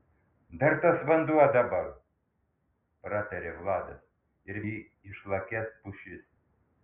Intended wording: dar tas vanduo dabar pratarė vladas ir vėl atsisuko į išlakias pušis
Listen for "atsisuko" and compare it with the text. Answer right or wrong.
wrong